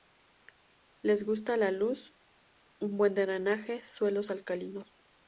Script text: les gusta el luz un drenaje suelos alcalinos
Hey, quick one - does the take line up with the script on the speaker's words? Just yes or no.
no